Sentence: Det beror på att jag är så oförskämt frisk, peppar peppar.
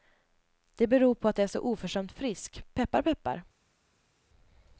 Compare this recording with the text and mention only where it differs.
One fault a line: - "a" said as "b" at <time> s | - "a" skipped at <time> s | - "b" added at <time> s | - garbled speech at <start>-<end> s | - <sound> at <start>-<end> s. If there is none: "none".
none